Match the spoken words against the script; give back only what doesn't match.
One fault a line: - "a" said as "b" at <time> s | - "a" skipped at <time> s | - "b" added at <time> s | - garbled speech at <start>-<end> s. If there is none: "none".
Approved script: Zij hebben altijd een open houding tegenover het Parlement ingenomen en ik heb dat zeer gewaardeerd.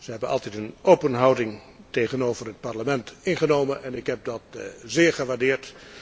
none